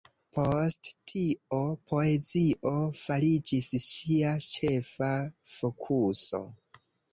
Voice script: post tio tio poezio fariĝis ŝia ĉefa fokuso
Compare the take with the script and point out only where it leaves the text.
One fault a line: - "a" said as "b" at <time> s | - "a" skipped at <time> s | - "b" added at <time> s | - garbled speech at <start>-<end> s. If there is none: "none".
- "tio" skipped at 1.6 s